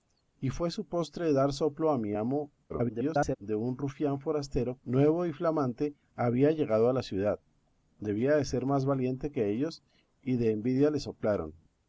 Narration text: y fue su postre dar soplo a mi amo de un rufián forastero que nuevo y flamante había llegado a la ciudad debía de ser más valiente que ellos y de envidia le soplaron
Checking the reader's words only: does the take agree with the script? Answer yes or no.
no